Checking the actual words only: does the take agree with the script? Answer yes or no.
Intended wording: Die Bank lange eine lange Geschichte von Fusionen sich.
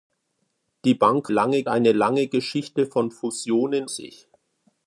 yes